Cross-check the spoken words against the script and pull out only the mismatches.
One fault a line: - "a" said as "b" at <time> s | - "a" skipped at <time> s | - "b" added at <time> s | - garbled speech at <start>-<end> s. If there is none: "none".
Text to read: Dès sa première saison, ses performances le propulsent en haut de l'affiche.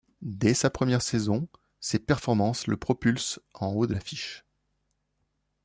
none